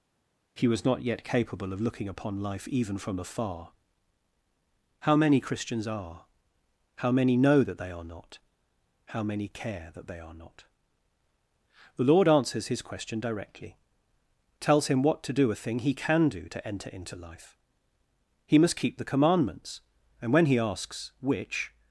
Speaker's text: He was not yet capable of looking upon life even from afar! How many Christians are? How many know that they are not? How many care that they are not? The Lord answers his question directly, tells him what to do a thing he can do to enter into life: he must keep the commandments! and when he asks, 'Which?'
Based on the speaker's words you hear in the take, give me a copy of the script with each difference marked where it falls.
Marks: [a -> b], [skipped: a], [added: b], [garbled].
He was not yet capable of looking upon life even from afar! How many Christians are? How many know that they are not? How many care that they are not? The Lord answers his question directly, tells him what to do a thing he can do to enter into life: he must keep the commandments! and when he asks, 'Which?'